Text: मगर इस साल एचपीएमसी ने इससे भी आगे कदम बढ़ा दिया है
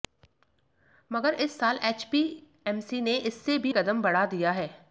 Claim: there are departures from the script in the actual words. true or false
true